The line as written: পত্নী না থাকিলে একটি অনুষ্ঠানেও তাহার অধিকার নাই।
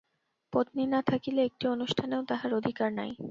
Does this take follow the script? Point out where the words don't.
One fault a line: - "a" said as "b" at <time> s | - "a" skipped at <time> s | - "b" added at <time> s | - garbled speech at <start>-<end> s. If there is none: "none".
none